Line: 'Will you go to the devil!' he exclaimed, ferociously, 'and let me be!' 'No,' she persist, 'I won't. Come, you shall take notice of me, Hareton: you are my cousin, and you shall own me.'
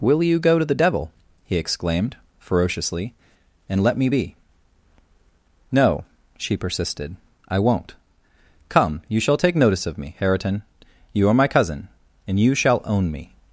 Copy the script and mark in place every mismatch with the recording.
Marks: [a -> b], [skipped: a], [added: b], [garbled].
'Will you go to the devil!' he exclaimed, ferociously, 'and let me be!' 'No,' she [persist, -> persisted] 'I won't. Come, you shall take notice of me, Hareton: you are my cousin, and you shall own me.'